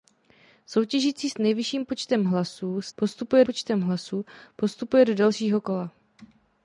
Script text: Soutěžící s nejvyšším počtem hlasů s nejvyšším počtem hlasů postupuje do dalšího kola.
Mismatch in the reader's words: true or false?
true